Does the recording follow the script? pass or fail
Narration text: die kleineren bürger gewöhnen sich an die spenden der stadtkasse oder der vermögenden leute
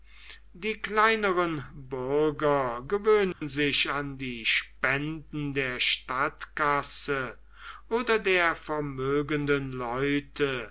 pass